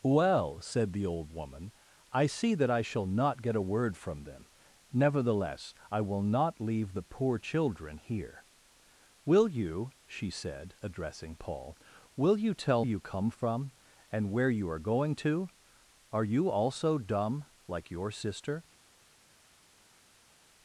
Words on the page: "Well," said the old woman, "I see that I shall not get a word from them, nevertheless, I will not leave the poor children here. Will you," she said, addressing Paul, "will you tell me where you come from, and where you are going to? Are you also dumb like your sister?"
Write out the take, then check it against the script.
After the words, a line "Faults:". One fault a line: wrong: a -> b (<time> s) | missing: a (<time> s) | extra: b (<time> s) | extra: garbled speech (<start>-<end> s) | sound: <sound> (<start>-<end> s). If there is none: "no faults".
"Well," said the old woman, "I see that I shall not get a word from them, nevertheless, I will not leave the poor children here. Will you," she said, addressing Paul, "will you tell you come from, and where you are going to? Are you also dumb like your sister?"
Faults:
missing: me where (12.8 s)